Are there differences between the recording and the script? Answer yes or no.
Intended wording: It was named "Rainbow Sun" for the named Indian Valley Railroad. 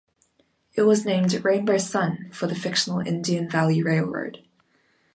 yes